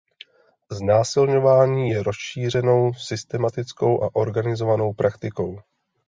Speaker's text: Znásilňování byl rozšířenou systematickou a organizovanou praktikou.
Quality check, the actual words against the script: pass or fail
fail